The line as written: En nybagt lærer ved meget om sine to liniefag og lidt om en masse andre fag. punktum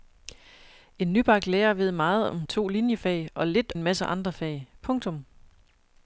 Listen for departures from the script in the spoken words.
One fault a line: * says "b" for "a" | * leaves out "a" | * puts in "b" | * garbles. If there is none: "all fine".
* leaves out "sine"
* leaves out "om"